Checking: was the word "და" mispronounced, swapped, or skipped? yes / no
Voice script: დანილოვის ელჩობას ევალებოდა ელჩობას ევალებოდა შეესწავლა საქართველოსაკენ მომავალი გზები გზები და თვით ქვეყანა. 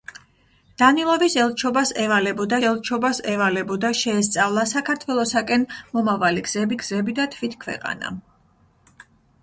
no